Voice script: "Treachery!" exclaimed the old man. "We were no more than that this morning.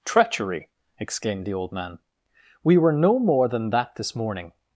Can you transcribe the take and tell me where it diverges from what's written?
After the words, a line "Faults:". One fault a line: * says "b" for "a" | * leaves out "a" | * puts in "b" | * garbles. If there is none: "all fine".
"Treachery!" exclaimed the old man. "We were no more than that this morning.
Faults:
all fine